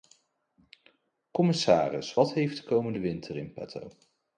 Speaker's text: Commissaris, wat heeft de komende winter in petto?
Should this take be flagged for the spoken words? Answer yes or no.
no